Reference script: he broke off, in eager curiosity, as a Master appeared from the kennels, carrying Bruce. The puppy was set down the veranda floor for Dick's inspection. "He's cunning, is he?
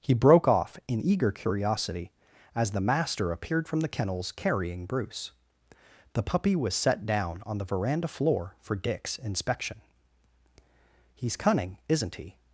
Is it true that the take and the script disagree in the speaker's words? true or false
true